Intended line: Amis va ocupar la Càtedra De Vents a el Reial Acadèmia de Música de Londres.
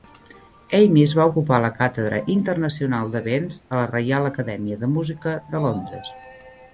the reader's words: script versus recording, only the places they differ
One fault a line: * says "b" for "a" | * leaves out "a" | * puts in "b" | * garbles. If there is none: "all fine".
* puts in "Internacional"
* says "la" for "el"